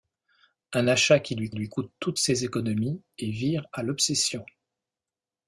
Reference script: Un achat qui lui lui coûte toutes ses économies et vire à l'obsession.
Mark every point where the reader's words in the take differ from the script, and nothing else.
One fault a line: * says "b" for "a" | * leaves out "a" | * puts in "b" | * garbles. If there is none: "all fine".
all fine